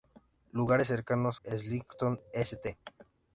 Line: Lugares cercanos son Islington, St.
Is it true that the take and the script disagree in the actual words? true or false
true